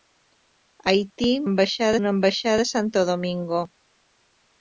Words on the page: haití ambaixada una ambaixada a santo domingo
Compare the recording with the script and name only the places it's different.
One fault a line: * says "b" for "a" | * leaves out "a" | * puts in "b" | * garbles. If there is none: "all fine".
all fine